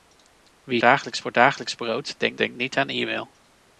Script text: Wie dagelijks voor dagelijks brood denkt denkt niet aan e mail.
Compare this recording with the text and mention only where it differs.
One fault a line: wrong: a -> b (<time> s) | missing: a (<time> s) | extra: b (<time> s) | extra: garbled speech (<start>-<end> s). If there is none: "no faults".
no faults